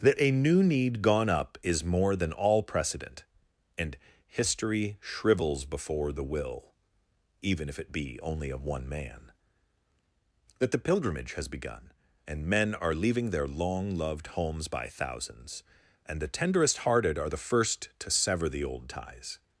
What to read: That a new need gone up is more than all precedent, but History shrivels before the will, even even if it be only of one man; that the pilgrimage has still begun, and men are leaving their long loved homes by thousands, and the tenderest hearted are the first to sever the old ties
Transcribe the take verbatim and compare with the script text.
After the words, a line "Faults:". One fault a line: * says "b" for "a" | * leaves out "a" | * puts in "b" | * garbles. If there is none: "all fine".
That a new need gone up is more than all precedent, and History shrivels before the will, even if it be only of one man; that the pilgrimage has begun, and men are leaving their long loved homes by thousands, and the tenderest hearted are the first to sever the old ties
Faults:
* says "and" for "but"
* leaves out "even"
* leaves out "still"